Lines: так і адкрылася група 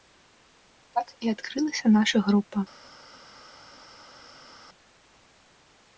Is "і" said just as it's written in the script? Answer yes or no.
yes